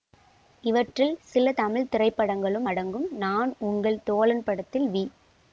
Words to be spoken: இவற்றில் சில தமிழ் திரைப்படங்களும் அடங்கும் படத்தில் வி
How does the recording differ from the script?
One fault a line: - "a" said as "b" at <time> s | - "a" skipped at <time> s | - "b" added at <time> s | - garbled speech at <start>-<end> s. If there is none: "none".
- "நான் உங்கள் தோழன்" added at 3.2 s